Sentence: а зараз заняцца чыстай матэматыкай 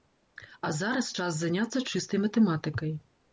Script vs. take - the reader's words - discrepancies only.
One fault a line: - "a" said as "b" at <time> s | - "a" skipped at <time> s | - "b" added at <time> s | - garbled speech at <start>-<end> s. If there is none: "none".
- "час" added at 1.2 s